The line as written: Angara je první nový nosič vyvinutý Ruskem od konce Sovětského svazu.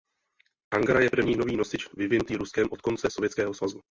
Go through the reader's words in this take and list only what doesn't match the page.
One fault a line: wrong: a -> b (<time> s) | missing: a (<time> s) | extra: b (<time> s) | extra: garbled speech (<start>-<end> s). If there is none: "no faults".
no faults